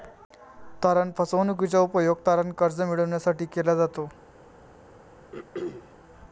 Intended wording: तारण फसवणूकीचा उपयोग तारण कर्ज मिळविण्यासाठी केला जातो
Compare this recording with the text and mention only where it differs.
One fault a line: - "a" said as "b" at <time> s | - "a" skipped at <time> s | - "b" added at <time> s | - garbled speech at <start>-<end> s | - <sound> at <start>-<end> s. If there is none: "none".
- throat clearing at 5.3-5.9 s